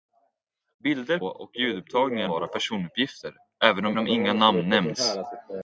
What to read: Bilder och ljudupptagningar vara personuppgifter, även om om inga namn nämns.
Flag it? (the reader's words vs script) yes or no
no